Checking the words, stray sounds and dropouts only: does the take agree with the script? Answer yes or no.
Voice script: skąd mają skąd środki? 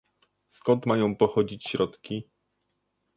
no